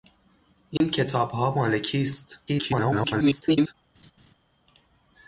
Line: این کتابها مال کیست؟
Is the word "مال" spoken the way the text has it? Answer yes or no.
yes